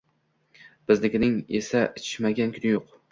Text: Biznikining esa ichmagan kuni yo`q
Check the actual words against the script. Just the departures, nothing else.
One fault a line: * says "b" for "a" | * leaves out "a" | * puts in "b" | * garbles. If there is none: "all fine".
all fine